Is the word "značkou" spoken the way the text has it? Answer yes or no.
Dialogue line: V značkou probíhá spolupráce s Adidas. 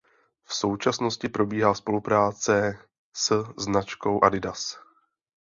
no